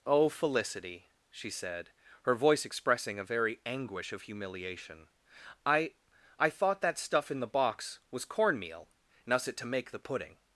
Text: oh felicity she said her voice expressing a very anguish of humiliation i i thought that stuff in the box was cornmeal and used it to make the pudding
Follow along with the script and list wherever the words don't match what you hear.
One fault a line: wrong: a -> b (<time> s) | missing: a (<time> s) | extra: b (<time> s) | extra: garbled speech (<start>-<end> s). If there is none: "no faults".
wrong: used -> us (9.3 s)